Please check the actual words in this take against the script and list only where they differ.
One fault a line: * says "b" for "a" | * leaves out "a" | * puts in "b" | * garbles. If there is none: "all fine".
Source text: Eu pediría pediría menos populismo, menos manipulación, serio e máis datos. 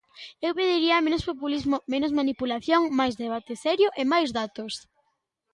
* leaves out "pediría"
* puts in "máis debate"